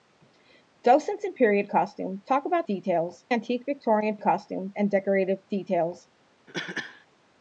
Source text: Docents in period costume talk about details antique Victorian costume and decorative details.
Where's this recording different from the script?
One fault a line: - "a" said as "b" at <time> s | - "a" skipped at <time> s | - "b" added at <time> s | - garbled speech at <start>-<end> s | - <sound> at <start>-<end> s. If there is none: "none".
- cough at 6.5-7.1 s